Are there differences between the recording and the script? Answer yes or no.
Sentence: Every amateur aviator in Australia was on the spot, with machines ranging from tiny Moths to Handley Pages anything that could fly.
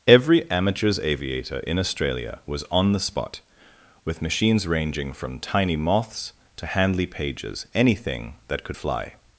yes